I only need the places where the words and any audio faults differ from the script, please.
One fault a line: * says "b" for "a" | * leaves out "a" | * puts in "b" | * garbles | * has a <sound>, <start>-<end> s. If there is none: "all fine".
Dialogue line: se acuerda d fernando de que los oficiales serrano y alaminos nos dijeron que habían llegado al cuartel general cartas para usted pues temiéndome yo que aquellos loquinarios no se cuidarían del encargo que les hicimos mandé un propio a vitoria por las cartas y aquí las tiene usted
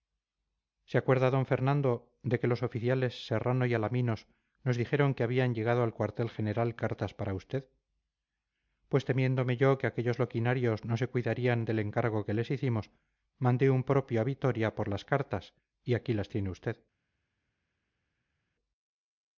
all fine